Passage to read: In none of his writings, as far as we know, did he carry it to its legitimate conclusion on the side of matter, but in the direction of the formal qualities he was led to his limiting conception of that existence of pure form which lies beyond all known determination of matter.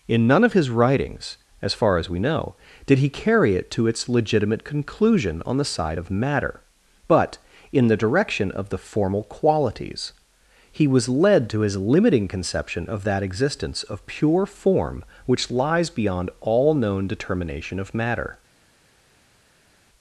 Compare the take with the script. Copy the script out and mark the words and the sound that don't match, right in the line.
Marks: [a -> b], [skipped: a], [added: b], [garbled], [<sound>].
In none of his writings, as far as we know, did he carry it to its legitimate conclusion on the side of matter, but in the direction of the formal qualities he was led to his limiting conception of that existence of pure form which lies beyond all known determination of matter.